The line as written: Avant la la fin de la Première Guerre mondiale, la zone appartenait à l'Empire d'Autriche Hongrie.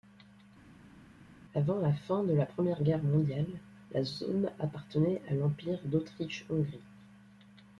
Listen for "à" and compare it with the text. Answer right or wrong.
right